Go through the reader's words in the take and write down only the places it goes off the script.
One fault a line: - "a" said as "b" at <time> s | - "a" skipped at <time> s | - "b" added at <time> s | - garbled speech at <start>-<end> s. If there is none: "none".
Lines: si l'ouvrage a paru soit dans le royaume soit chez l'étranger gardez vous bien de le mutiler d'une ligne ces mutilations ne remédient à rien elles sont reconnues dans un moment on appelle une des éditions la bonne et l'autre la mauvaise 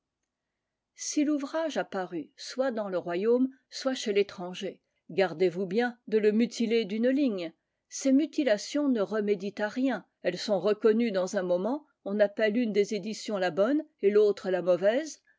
none